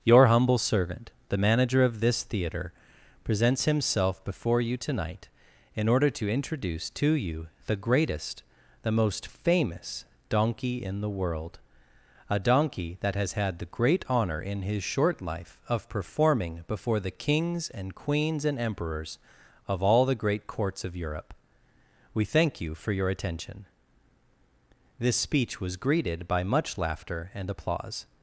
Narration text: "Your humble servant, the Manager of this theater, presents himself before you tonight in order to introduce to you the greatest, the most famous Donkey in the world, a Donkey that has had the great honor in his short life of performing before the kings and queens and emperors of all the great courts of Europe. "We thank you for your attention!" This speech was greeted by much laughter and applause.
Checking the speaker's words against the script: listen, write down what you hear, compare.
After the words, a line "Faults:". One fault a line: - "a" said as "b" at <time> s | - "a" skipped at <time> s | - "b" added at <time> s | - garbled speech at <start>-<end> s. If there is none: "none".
"Your humble servant, the Manager of this theater, presents himself before you tonight in order to introduce to you the greatest, the most famous Donkey in the world, a Donkey that has had the great honor in his short life of performing before the kings and queens and emperors of all the great courts of Europe. "We thank you for your attention!" This speech was greeted by much laughter and applause.
Faults:
none